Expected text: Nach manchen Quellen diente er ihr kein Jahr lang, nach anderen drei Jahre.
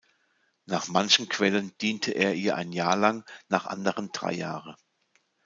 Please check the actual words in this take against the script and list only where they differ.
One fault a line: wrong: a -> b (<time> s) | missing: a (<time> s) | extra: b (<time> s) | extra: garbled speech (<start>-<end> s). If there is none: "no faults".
wrong: kein -> ein (2.5 s)